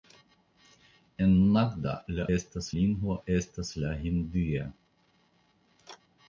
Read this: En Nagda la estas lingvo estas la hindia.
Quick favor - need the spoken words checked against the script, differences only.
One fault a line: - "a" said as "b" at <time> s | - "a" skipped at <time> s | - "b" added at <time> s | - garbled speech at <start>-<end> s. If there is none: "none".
none